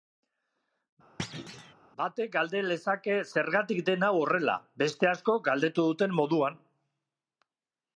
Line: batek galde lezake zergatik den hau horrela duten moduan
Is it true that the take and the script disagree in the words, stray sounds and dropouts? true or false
true